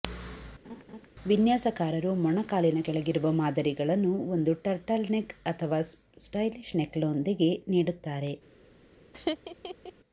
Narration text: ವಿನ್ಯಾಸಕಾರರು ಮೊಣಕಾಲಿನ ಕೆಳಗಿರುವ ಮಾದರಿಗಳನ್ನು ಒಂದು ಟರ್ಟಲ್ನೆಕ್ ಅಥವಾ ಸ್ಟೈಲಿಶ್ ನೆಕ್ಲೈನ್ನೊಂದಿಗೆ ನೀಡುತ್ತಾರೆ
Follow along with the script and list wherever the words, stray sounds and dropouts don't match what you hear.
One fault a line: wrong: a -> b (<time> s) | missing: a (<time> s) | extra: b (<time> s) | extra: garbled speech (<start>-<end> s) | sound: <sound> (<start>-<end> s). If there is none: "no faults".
sound: laugh (0.6-1.1 s)
sound: laugh (9.1-9.9 s)